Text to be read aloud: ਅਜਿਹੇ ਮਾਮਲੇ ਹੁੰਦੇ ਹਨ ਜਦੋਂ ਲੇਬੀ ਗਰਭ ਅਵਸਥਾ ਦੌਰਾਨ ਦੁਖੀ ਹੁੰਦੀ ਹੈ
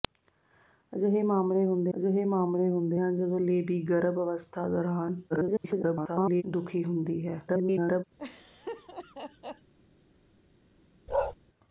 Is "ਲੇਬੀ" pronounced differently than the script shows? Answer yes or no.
no